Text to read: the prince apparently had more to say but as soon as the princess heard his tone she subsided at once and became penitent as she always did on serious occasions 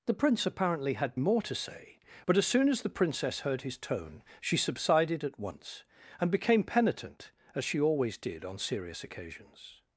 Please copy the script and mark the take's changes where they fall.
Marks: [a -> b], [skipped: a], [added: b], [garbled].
the prince apparently had more to say but as soon as the princess heard his tone she subsided at once and became penitent as she always did on serious occasions